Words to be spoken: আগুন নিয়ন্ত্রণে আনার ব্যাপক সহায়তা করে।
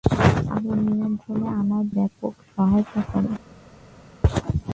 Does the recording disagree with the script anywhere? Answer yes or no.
no